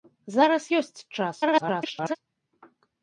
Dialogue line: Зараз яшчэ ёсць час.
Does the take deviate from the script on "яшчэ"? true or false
true